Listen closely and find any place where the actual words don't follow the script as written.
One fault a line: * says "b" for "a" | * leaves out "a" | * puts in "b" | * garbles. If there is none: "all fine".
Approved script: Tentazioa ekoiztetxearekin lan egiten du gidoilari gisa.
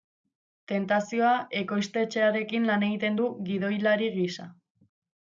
all fine